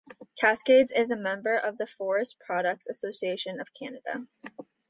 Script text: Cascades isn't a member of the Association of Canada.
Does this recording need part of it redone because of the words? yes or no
yes